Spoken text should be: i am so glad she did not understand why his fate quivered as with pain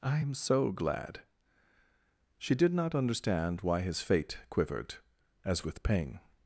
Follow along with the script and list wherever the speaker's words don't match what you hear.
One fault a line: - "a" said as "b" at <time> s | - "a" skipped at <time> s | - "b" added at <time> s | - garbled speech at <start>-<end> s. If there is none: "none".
none